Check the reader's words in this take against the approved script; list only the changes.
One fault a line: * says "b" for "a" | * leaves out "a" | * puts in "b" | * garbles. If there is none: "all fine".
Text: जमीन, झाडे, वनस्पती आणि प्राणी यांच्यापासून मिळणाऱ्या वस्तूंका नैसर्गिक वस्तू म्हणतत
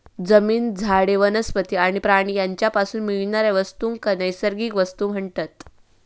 all fine